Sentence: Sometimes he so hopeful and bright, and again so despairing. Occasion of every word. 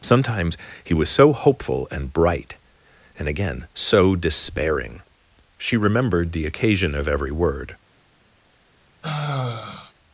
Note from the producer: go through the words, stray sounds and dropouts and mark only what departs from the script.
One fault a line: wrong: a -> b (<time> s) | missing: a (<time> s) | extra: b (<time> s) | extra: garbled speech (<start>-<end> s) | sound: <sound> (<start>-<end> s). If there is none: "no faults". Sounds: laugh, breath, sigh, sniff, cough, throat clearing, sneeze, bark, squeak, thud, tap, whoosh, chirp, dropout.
extra: was (0.9 s)
extra: She remembered the (5.6 s)
sound: sigh (9.0-9.9 s)